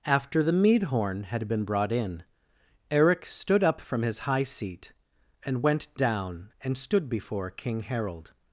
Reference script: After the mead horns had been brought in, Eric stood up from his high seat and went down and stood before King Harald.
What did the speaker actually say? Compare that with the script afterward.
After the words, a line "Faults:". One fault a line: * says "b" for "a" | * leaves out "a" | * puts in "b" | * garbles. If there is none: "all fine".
After the mead horn had been brought in, Eric stood up from his high seat and went down and stood before King Harald.
Faults:
* says "horn" for "horns"